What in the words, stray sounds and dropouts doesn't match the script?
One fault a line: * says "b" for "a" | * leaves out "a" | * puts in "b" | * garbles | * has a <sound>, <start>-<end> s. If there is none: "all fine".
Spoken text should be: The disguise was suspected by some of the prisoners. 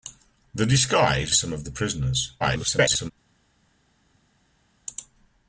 * leaves out "was suspected by"
* garbles